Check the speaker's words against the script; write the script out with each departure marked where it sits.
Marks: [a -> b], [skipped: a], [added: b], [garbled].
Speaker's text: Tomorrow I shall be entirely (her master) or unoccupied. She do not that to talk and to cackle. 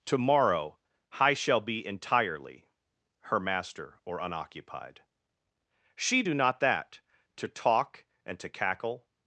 Tomorrow I shall be entirely (her master) or unoccupied. She do not that to talk and to cackle.